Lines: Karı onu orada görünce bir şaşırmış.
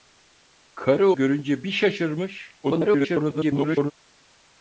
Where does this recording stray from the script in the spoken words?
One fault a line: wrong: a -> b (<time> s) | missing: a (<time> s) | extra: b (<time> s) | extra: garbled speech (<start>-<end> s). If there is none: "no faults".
missing: onu orada (1.1 s)
extra: garbled speech (2.6-3.9 s)